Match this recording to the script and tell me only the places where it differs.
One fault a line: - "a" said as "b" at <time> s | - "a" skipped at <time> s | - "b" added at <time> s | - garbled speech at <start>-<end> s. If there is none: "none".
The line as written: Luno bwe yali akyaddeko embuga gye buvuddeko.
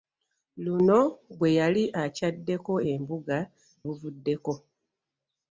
- "gye" skipped at 3.4 s